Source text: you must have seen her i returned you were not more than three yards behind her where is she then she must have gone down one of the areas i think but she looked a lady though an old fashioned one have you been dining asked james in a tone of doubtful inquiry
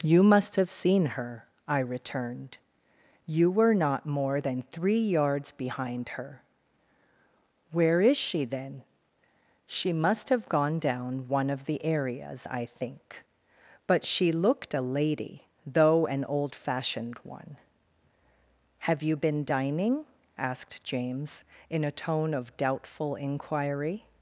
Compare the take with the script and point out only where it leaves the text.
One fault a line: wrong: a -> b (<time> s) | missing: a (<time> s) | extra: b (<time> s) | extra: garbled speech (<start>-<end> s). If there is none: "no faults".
no faults